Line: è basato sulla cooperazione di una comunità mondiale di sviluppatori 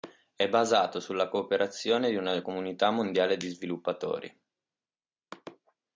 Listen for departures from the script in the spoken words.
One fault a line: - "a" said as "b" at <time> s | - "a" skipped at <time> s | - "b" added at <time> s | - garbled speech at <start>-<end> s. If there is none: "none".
none